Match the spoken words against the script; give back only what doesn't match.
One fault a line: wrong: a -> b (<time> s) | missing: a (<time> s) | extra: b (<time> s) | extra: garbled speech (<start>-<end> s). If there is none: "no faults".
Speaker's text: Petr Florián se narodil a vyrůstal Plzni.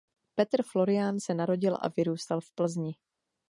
extra: v (2.4 s)